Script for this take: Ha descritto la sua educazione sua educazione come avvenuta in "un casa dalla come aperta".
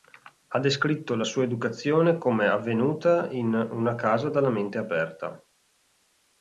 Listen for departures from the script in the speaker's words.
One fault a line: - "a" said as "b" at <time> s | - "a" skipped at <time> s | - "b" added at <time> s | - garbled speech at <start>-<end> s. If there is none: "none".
- "sua educazione" skipped at 2.2 s
- "un" said as "una" at 3.5 s
- "come" said as "mente" at 4.5 s